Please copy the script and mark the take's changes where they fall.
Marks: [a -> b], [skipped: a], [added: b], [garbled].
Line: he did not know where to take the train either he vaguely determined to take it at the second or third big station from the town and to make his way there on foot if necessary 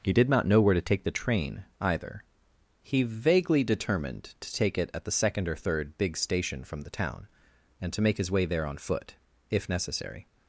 he did not know where to take the train either he vaguely determined to take it at the second or third big station from the town and to make his way there on foot if necessary